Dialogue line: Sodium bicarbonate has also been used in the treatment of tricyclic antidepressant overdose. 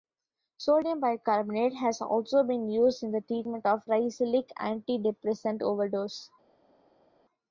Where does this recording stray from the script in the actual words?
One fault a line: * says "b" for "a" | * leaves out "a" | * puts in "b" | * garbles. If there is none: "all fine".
all fine